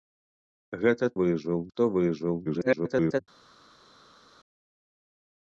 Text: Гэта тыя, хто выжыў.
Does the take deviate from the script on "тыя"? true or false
true